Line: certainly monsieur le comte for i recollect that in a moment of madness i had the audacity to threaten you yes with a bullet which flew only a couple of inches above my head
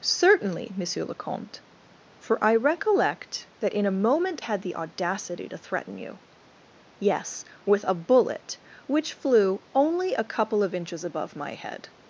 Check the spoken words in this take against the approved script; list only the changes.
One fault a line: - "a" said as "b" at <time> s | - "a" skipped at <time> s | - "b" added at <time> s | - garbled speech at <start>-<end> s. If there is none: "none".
- "of madness i" skipped at 4.4 s